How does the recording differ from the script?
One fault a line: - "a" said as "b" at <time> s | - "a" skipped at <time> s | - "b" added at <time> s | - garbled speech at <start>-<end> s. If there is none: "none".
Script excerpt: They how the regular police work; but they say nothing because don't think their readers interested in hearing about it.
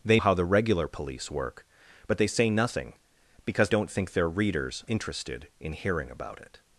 none